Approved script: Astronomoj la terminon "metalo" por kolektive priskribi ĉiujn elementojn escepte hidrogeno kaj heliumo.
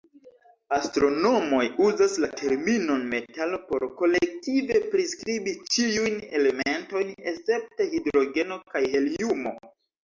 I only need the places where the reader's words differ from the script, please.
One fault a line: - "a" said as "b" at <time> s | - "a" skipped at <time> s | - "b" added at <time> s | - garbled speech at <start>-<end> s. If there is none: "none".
- "uzas" added at 1.9 s